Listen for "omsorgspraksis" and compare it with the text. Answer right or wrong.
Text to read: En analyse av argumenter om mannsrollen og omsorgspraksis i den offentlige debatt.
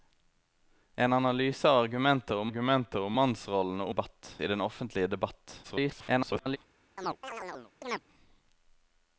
wrong